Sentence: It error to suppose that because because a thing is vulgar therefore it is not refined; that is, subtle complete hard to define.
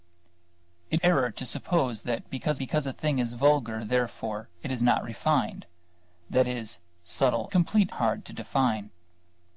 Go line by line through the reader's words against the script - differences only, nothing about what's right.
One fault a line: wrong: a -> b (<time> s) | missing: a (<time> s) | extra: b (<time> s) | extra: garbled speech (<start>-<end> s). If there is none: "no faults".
no faults